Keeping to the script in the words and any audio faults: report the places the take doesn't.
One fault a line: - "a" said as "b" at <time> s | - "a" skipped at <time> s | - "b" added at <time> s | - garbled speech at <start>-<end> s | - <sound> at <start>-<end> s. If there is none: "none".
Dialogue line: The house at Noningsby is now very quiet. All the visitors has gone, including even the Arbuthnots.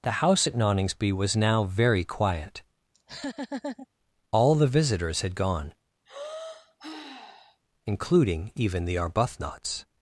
- "is" said as "was" at 1.1 s
- laugh at 2.9-3.9 s
- "has" said as "had" at 5.2 s
- sigh at 6.1-7.6 s